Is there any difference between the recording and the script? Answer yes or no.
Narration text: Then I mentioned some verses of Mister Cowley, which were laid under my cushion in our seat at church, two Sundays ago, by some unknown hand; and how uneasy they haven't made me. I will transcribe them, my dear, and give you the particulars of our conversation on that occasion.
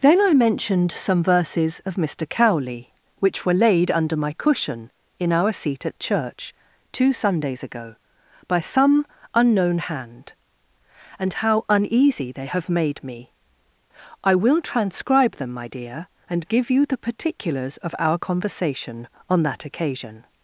yes